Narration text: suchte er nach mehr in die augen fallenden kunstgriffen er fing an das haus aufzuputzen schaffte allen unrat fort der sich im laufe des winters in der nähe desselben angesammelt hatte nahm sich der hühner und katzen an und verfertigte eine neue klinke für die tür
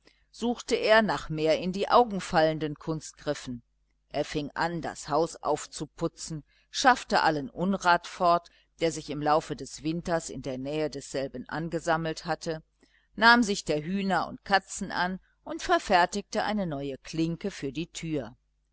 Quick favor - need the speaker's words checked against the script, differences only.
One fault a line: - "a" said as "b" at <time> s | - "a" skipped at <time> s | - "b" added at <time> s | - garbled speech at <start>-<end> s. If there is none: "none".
none